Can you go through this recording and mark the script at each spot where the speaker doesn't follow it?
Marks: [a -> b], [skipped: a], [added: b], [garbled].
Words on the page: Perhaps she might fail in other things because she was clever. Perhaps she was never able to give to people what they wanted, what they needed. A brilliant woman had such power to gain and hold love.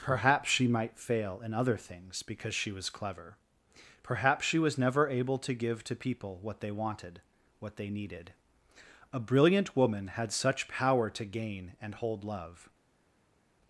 Perhaps she might fail in other things because she was clever. Perhaps she was never able to give to people what they wanted, what they needed. A brilliant woman had such power to gain and hold love.